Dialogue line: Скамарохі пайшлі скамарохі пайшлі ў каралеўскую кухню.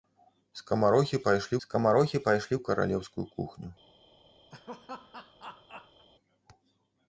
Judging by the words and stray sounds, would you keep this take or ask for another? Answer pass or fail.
fail